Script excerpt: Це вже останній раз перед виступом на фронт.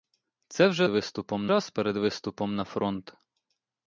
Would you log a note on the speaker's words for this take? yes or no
yes